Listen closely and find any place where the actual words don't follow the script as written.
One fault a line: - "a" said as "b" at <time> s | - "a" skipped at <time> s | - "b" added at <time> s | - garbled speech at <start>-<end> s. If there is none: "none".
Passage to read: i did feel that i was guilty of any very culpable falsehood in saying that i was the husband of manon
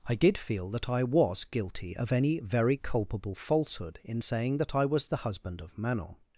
none